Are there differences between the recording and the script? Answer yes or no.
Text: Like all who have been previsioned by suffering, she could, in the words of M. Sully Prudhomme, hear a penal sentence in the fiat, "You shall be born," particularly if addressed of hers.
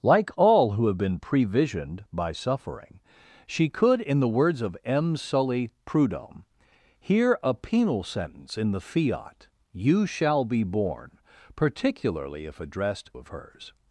no